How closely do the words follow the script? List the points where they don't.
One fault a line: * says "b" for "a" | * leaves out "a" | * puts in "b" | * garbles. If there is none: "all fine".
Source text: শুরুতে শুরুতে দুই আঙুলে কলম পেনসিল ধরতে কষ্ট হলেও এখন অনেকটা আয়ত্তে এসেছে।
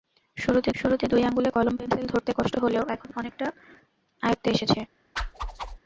all fine